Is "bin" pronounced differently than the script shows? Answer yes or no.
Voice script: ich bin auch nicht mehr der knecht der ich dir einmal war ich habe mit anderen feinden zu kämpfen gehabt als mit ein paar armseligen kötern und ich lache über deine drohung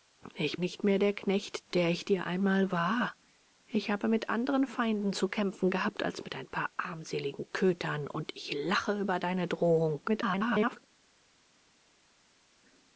yes